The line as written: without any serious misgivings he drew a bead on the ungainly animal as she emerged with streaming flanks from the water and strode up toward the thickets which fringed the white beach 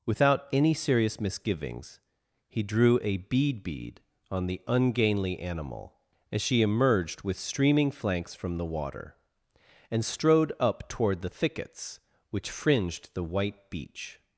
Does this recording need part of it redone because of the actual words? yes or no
yes